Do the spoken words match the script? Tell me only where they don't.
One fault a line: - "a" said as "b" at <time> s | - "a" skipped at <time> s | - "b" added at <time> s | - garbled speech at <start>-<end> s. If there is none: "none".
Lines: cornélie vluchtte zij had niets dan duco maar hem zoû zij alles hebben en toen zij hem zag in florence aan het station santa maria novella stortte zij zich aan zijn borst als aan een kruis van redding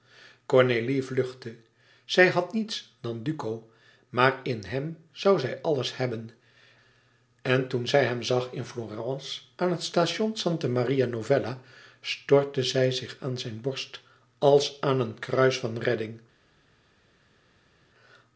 - "in" added at 4.4 s